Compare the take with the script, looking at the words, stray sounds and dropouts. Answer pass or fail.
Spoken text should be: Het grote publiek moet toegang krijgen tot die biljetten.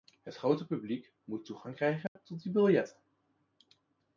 fail